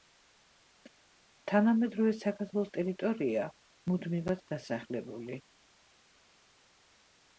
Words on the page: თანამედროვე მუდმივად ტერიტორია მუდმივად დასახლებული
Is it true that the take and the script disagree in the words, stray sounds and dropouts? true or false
true